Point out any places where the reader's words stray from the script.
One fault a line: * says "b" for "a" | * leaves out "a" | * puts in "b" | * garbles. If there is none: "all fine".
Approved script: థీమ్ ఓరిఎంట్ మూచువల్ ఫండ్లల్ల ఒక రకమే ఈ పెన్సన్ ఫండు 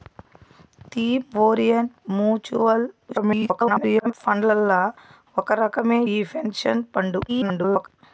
* garbles
* garbles